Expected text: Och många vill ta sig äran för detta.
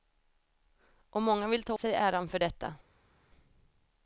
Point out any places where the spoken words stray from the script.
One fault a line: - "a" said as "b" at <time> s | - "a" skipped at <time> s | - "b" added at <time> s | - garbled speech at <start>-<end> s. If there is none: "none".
none